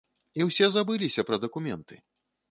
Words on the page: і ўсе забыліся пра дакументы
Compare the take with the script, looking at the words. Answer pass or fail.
pass